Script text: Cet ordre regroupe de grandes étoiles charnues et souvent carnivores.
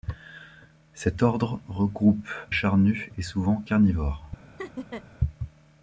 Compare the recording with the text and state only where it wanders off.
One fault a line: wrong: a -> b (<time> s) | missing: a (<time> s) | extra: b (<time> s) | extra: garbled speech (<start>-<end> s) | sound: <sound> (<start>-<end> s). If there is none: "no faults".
missing: de grandes étoiles (2.3 s)
sound: laugh (4.6-5.0 s)